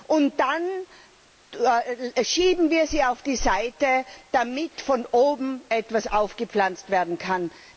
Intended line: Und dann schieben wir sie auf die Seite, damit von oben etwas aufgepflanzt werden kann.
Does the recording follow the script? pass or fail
pass